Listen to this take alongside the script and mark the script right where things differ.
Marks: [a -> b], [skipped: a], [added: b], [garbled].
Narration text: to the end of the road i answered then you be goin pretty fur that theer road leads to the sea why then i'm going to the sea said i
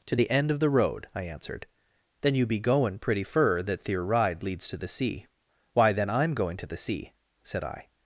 to the end of the road i answered then you be goin pretty fur that theer [road -> ride] leads to the sea why then i'm going to the sea said i